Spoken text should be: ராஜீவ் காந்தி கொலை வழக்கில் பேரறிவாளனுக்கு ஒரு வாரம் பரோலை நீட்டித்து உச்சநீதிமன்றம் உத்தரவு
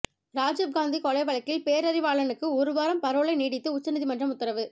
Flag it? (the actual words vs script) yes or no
no